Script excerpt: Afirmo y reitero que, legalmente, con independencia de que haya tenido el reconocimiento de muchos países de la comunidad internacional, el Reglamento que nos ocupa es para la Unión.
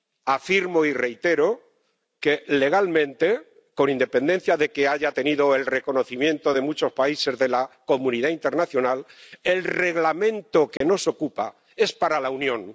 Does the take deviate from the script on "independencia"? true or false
false